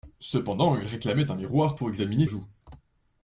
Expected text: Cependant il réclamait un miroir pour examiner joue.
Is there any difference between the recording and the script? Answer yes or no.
no